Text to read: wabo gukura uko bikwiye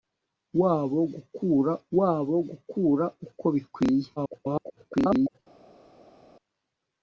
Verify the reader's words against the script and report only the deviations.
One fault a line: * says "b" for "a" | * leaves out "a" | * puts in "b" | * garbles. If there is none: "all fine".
* puts in "wabo gukura"
* garbles